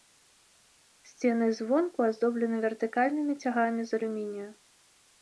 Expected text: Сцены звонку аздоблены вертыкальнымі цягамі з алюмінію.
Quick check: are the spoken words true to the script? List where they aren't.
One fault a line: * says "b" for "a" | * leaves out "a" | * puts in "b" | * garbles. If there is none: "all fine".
all fine